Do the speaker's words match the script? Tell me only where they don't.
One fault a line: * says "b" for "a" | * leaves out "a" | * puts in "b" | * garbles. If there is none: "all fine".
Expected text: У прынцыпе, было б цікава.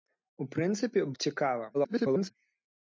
* leaves out "было"
* garbles